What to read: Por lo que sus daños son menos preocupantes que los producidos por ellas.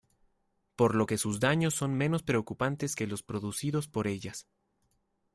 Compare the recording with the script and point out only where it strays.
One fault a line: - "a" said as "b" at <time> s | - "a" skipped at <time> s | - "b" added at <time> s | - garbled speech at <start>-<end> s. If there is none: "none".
none